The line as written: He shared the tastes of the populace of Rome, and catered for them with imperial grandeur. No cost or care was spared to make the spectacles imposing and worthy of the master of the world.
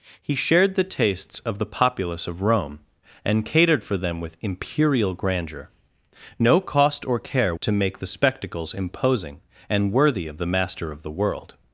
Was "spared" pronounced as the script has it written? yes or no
no